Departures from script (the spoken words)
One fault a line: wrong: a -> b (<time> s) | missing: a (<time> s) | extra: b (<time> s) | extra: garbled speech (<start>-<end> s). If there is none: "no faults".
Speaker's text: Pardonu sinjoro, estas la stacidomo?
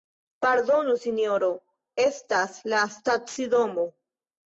no faults